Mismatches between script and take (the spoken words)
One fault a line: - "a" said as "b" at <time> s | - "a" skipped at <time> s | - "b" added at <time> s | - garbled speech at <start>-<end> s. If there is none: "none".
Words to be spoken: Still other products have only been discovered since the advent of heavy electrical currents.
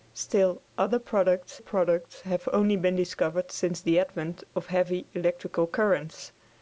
- "products" added at 1.6 s